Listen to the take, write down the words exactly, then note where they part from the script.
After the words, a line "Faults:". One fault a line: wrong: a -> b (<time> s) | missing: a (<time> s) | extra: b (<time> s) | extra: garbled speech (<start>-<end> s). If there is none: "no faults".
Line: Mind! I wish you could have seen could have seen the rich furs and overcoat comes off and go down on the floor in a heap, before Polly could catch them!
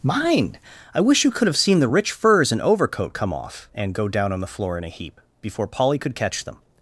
Mind! I wish you could have seen the rich furs and overcoat come off and go down on the floor in a heap, before Polly could catch them!
Faults:
missing: could have seen (1.8 s)
wrong: comes -> come (3.1 s)